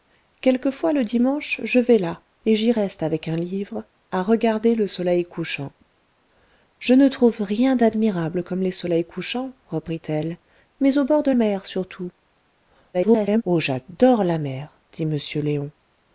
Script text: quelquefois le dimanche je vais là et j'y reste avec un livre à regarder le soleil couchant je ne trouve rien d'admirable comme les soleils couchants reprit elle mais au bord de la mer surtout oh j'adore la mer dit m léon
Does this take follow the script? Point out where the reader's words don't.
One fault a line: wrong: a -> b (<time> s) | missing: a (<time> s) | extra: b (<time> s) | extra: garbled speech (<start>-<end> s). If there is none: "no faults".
missing: la (11.3 s)
extra: garbled speech (12.9-13.4 s)